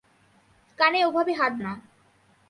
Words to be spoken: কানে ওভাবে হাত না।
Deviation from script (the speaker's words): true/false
false